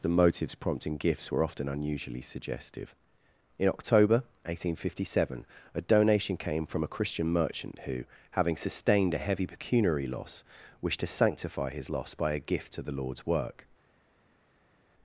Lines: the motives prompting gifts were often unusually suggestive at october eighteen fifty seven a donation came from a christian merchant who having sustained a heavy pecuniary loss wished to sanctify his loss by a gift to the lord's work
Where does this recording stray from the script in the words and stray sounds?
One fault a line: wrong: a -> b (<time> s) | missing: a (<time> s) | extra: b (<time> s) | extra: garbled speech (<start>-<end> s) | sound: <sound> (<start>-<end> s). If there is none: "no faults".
wrong: at -> in (3.6 s)